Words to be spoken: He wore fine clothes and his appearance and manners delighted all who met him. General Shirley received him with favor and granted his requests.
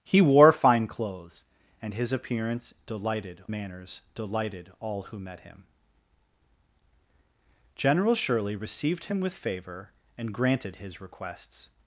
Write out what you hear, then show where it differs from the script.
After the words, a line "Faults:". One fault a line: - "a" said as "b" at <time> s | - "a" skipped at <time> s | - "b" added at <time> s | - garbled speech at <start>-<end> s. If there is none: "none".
He wore fine clothes and his appearance delighted manners delighted all who met him. General Shirley received him with favor and granted his requests.
Faults:
- "and" said as "delighted" at 2.8 s